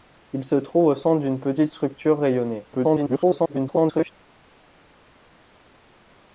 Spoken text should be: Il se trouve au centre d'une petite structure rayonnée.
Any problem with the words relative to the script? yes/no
yes